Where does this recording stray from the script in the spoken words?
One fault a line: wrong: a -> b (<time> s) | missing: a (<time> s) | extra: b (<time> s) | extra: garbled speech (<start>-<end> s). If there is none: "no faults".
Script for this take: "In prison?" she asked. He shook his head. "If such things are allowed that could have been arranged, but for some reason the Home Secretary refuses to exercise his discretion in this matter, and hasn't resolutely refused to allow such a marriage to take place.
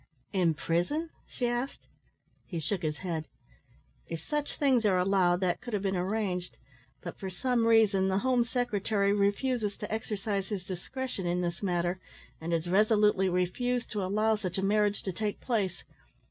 wrong: hasn't -> has (12.5 s)